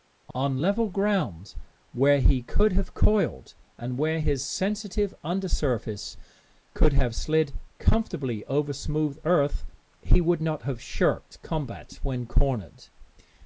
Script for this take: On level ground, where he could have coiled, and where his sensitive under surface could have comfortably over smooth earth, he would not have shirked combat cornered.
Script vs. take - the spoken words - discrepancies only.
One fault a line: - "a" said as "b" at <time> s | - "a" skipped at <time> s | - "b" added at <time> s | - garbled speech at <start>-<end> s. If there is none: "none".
- "slid" added at 7.2 s
- "when" added at 12.0 s